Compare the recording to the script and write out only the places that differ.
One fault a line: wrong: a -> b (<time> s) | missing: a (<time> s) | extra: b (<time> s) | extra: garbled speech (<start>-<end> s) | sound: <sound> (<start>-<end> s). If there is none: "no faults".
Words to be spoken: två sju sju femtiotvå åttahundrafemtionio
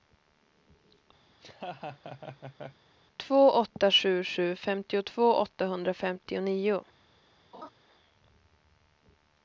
sound: laugh (1.3-2.8 s)
extra: åtta (3.5 s)
sound: laugh (7.5-7.7 s)